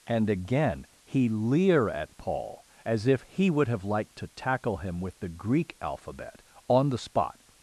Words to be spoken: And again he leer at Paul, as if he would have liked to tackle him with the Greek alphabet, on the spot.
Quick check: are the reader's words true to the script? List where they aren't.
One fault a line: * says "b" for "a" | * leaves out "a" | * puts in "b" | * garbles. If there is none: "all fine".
all fine